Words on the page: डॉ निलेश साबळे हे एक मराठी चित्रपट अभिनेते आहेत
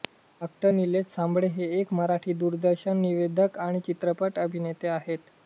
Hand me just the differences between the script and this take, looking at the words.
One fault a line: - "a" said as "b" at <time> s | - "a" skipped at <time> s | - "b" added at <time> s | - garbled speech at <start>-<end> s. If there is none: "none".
- "दूरदर्शन निवेदक आणि" added at 2.3 s